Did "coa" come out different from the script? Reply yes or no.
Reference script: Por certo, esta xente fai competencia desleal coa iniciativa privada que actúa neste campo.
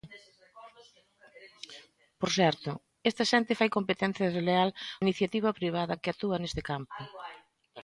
yes